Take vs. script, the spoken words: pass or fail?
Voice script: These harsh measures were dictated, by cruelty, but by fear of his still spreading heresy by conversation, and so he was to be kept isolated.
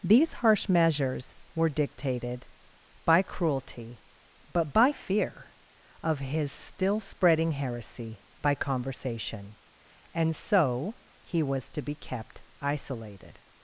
pass